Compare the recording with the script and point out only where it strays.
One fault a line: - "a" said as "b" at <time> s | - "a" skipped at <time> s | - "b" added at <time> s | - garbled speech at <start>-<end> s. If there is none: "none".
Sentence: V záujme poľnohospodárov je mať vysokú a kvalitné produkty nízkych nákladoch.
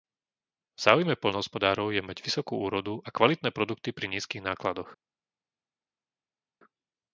- "úrodu" added at 2.6 s
- "pri" added at 3.9 s